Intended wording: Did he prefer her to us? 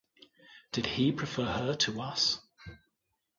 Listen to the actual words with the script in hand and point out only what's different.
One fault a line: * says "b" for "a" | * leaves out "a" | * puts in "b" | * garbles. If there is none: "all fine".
all fine